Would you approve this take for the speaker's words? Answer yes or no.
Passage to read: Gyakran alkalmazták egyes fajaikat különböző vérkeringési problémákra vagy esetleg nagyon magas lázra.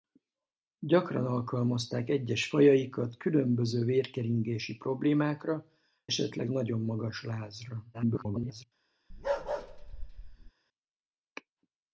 no